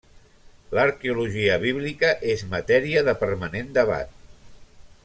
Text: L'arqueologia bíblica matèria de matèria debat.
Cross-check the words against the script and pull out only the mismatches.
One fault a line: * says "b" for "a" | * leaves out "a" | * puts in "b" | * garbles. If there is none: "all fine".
* puts in "és"
* says "permanent" for "matèria"